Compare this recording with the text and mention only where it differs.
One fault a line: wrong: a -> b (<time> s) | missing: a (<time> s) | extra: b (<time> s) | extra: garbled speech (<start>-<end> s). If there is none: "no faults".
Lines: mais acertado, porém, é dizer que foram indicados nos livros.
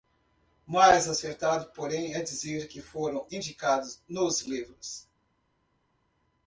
no faults